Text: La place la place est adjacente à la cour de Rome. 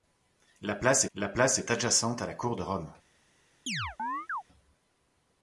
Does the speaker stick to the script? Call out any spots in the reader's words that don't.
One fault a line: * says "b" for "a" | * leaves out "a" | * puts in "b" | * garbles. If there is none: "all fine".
all fine